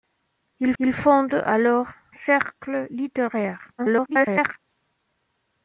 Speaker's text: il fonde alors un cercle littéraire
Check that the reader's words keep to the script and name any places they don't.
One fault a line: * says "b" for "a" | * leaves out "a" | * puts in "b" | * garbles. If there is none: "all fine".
* puts in "il"
* leaves out "un"
* garbles